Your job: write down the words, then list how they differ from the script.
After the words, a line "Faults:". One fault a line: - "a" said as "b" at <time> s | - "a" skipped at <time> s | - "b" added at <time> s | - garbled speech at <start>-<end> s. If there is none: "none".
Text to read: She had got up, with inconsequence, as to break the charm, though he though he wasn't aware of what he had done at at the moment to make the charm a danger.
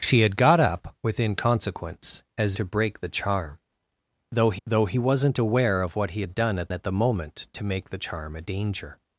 She had got up, with inconsequence, as to break the charm, though he though he wasn't aware of what he had done at at the moment to make the charm a danger.
Faults:
none